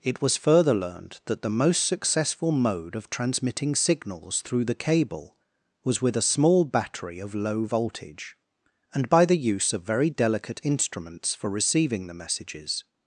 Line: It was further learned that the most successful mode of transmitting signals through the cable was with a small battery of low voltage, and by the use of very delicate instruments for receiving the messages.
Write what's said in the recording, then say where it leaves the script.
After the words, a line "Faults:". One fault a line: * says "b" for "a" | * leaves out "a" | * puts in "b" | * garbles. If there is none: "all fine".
It was further learned that the most successful mode of transmitting signals through the cable was with a small battery of low voltage, and by the use of very delicate instruments for receiving the messages.
Faults:
all fine